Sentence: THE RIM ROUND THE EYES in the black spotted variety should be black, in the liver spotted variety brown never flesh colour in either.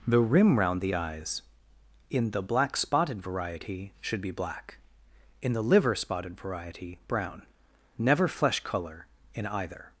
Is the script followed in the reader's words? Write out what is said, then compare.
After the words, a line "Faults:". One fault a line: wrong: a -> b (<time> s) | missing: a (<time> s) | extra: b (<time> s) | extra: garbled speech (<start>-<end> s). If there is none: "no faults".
THE RIM ROUND THE EYES in the black spotted variety should be black, in the liver spotted variety brown never flesh colour in either.
Faults:
no faults